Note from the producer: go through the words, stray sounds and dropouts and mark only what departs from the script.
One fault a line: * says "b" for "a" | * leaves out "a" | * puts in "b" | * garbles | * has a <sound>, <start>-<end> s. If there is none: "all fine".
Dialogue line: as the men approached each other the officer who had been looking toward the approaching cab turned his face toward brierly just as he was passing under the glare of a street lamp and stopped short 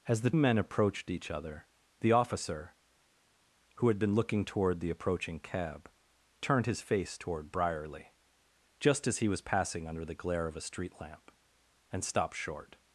all fine